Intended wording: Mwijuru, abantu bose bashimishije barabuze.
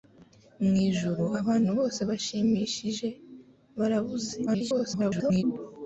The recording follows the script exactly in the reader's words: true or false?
false